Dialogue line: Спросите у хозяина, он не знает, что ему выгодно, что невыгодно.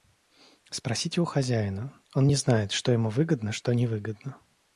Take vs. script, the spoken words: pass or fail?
pass